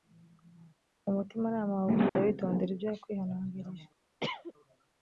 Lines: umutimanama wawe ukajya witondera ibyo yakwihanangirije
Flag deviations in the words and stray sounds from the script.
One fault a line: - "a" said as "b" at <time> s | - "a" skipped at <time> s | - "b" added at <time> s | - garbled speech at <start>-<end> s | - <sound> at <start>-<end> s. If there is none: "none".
- dropout at 2.1-2.2 s
- cough at 4.2-4.5 s